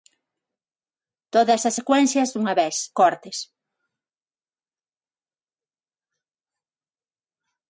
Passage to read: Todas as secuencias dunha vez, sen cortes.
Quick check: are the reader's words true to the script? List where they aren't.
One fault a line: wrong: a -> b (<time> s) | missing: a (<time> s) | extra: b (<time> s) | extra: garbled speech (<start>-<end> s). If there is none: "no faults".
missing: sen (2.8 s)